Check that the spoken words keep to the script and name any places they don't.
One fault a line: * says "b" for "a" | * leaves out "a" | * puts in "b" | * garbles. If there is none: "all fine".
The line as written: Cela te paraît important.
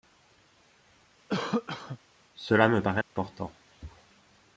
* says "me" for "te"